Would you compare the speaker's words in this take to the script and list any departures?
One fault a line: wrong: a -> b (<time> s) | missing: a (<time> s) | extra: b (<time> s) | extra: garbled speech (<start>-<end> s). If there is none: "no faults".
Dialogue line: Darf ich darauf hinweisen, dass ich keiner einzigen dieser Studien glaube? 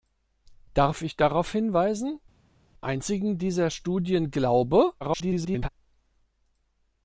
missing: dass ich keiner (2.2 s)
extra: garbled speech (5.0-5.7 s)